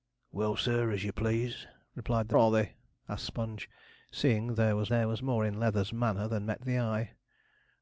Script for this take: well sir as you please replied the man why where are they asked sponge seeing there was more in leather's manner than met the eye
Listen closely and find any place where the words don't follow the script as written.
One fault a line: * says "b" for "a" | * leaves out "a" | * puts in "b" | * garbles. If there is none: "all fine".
* leaves out "man why where"
* puts in "there was"